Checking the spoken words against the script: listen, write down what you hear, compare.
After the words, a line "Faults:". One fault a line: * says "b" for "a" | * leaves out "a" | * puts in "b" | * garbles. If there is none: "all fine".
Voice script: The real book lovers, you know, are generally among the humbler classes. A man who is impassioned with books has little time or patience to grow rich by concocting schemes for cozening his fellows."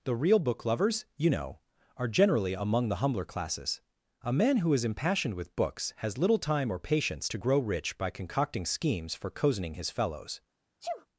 The real book lovers, you know, are generally among the humbler classes. A man who is impassioned with books has little time or patience to grow rich by concocting schemes for cozening his fellows."
Faults:
all fine